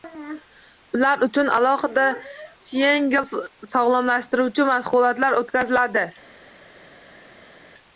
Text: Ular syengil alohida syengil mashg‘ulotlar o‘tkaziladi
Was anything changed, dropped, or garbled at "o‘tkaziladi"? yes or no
no